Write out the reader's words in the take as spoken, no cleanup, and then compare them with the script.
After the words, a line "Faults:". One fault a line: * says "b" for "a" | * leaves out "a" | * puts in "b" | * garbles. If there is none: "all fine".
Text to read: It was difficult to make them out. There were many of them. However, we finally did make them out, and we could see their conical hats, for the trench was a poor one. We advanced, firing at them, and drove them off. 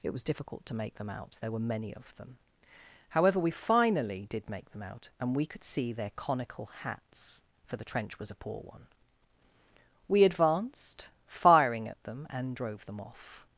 It was difficult to make them out. There were many of them. However, we finally did make them out, and we could see their conical hats, for the trench was a poor one. We advanced, firing at them, and drove them off.
Faults:
all fine